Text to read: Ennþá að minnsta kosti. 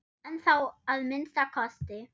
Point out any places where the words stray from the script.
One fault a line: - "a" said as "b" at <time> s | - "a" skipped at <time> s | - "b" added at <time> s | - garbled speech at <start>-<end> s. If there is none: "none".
none